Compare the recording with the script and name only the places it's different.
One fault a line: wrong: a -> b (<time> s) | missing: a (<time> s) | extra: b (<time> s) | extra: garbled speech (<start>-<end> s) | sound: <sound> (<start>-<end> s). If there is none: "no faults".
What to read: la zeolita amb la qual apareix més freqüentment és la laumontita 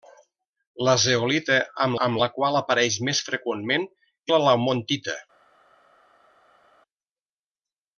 extra: amb (2.1 s)
missing: és (3.9 s)